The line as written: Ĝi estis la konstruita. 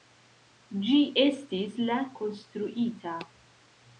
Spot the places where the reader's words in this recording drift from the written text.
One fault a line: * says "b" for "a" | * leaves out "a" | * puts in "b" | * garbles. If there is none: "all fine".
all fine